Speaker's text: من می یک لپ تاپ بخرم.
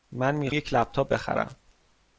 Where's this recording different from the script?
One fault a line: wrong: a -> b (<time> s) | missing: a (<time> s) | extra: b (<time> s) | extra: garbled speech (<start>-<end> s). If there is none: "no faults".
no faults